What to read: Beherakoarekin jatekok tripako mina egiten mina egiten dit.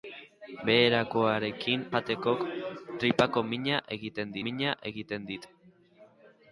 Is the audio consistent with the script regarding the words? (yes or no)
yes